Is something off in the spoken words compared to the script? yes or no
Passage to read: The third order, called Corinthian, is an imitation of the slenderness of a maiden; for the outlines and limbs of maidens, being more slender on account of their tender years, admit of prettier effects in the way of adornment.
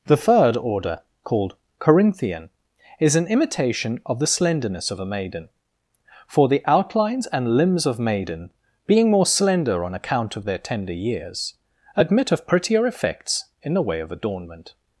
yes